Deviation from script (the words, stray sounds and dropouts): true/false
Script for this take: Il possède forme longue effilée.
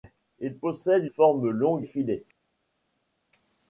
false